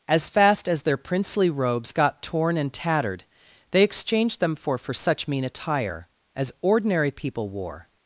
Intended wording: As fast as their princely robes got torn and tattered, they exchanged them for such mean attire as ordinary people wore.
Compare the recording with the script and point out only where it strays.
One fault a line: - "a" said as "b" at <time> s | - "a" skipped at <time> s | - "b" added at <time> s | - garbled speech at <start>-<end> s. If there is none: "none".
- "for" added at 4.8 s